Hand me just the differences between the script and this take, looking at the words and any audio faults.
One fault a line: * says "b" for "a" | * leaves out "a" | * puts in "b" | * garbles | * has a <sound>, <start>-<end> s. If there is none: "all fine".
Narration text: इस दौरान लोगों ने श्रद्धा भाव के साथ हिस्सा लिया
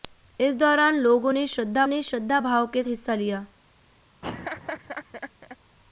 * puts in "ने श्रद्धा"
* leaves out "साथ"
* has a laugh, 4.2-5.6 s